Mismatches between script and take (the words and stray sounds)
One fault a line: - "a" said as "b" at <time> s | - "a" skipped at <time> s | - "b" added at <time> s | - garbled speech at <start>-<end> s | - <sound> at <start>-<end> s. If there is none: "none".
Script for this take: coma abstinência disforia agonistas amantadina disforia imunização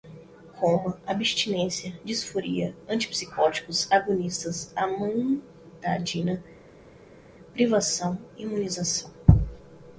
- "antipsicóticos" added at 2.9 s
- "disforia" said as "privação" at 7.5 s